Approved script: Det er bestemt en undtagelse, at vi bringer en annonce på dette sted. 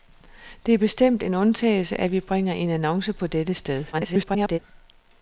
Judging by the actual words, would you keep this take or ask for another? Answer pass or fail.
fail